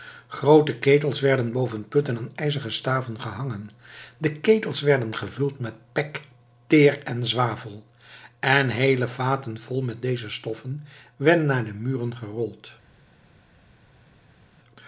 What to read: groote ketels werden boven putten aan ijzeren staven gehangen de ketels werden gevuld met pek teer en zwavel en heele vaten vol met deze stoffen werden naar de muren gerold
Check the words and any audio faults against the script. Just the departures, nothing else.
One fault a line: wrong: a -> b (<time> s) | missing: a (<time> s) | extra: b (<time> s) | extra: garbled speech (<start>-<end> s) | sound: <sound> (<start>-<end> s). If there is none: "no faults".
no faults